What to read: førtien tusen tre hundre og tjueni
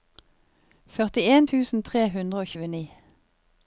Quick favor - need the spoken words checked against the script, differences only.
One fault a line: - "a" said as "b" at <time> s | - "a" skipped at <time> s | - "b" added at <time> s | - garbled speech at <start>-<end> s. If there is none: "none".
none